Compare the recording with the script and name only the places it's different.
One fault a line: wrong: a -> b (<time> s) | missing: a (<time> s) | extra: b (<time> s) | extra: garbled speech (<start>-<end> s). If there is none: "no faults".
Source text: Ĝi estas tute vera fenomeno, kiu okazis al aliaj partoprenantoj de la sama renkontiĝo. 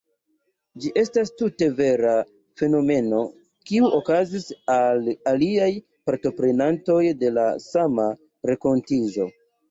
no faults